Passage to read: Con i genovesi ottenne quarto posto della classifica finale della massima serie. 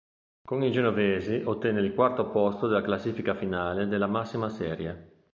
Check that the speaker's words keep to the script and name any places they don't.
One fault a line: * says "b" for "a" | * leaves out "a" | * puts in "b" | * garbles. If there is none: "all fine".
* puts in "il"